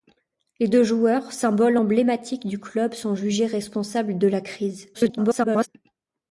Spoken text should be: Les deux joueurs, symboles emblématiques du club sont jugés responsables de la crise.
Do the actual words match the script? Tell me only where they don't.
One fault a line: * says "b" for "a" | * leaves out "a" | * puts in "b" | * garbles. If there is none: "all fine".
* garbles